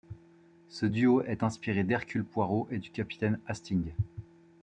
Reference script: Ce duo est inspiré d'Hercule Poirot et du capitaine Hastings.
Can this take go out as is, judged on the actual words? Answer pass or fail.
pass